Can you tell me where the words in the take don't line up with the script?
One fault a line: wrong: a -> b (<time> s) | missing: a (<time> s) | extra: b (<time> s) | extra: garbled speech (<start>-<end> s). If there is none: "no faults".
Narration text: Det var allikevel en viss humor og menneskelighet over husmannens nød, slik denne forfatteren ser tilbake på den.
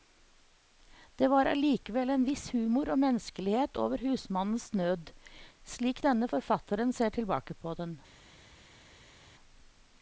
no faults